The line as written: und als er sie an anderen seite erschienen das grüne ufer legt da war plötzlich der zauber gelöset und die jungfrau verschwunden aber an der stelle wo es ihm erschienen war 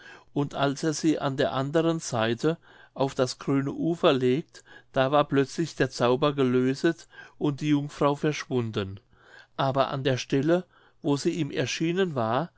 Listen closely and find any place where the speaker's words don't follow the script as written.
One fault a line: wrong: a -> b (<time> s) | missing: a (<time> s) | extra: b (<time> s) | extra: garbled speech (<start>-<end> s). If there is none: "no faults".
extra: der (1.4 s)
wrong: erschienen -> auf (3.0 s)
wrong: es -> sie (11.2 s)